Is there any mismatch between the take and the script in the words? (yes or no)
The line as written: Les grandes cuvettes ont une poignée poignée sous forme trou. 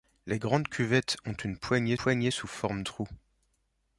no